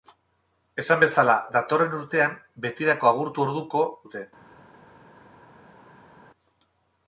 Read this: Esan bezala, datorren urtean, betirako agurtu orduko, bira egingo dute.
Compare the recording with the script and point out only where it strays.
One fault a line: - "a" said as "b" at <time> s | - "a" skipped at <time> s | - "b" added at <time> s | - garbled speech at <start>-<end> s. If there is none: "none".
- "bira egingo" skipped at 3.8 s